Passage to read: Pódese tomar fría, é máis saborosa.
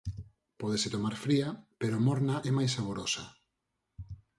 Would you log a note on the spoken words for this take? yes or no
yes